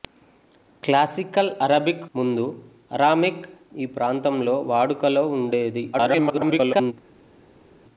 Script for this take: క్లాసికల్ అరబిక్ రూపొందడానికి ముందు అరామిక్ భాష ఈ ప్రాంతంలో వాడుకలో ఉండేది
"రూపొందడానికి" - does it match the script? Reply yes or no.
no